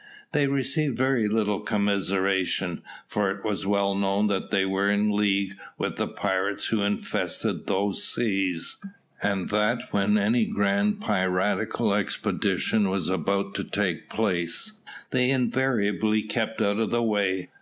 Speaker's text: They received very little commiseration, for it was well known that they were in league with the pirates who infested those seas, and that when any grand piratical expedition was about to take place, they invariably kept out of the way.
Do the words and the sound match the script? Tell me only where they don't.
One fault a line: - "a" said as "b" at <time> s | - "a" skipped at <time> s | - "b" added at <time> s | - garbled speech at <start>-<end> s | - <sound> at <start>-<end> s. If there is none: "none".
none